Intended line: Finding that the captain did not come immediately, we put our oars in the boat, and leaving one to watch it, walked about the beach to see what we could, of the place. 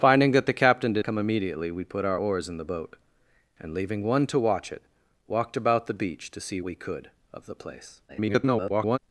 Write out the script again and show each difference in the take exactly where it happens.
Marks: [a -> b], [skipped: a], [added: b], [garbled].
Finding that the captain did [skipped: not] come immediately, we put our oars in the boat, and leaving one to watch it, walked about the beach to see [skipped: what] we could, of the place. [garbled]